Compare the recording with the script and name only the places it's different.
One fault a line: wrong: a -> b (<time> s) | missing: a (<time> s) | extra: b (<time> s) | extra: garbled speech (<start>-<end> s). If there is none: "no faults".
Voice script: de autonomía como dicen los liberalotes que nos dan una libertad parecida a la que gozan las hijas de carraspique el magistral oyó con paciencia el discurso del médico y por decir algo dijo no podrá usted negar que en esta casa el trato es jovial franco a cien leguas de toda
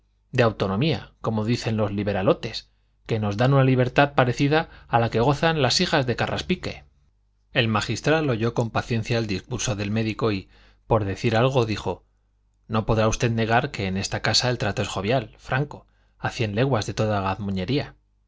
no faults